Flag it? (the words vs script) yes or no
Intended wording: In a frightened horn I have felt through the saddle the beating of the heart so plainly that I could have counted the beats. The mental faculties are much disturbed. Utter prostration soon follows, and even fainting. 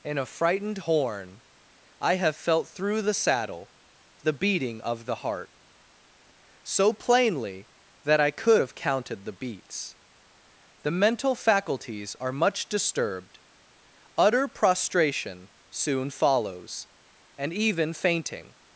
no